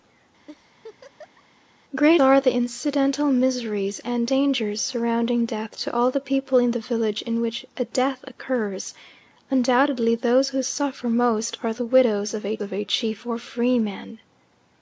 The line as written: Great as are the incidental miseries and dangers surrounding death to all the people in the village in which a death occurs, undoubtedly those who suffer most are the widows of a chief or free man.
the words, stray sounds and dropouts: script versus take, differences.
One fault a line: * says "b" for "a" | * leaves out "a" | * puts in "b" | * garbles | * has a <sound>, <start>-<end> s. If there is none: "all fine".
* has a laugh, 0.5-1.4 s
* leaves out "as"
* puts in "of a"